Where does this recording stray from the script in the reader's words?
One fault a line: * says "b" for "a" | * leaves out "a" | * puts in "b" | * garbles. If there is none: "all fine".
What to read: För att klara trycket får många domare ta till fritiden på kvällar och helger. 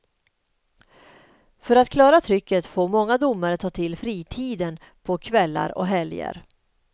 all fine